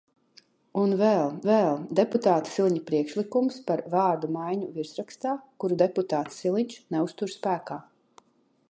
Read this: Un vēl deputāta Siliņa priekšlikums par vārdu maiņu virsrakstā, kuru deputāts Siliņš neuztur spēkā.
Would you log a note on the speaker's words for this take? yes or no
yes